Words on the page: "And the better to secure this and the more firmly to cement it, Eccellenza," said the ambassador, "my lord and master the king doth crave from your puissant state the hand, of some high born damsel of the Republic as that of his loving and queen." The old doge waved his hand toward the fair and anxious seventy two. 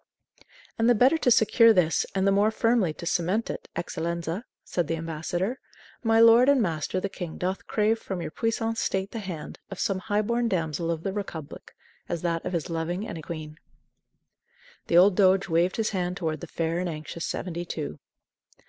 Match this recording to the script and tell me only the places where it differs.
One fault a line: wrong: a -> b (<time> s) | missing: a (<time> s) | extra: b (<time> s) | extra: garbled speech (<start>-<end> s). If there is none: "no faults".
no faults